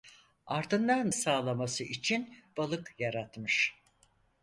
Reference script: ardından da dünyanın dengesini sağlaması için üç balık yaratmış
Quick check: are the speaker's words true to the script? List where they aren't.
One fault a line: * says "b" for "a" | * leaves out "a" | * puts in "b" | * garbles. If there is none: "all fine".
* leaves out "da dünyanın dengesini"
* leaves out "üç"